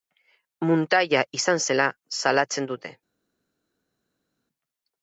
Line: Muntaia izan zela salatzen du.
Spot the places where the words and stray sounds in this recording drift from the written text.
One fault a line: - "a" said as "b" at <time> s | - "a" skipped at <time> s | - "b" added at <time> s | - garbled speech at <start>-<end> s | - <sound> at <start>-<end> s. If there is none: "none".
- "du" said as "dute" at 2.7 s